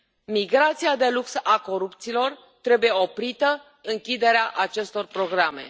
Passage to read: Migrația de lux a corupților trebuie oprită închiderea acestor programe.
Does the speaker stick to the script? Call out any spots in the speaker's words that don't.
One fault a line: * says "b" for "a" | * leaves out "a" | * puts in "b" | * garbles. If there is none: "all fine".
all fine